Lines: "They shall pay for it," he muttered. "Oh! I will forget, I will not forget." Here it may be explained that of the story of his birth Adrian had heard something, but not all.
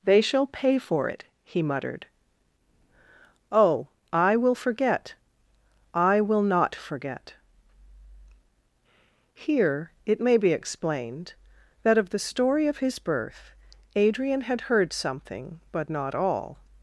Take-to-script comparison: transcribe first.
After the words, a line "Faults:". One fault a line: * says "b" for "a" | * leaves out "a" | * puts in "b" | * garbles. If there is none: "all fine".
"They shall pay for it," he muttered. "Oh! I will forget, I will not forget." Here it may be explained that of the story of his birth Adrian had heard something, but not all.
Faults:
all fine